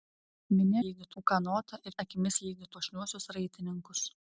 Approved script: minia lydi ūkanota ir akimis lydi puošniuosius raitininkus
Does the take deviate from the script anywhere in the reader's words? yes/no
no